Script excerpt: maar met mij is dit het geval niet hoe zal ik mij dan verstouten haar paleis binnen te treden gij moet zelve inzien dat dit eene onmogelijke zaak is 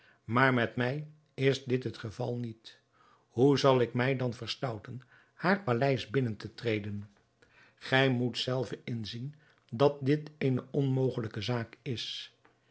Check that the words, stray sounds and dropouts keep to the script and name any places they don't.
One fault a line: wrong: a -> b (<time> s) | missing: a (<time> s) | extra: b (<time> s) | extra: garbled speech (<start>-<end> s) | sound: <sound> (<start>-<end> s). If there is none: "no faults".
no faults